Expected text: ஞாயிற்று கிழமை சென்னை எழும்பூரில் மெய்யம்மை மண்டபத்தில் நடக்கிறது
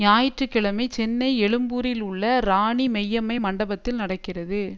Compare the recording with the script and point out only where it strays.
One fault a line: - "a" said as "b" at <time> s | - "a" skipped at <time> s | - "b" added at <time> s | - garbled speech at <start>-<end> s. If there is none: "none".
- "உள்ள ராணி" added at 2.0 s